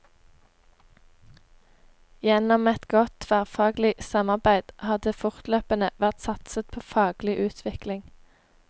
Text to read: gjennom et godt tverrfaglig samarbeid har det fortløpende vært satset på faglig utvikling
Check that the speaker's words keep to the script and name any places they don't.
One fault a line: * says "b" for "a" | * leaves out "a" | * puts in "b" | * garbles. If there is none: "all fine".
all fine